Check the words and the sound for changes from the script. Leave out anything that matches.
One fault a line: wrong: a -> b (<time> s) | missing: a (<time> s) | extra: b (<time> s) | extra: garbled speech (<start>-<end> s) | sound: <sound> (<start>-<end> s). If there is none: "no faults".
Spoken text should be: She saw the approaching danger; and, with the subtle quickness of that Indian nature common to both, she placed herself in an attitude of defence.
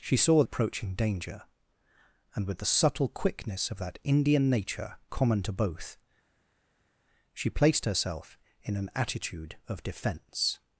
missing: the (0.4 s)